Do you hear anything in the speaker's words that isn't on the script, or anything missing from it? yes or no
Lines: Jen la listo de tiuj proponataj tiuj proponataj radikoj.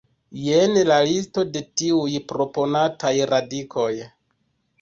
yes